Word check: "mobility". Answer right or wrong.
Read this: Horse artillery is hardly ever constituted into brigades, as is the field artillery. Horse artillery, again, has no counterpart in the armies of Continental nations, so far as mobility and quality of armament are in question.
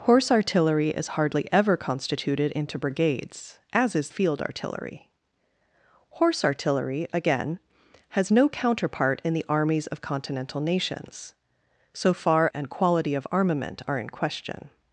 wrong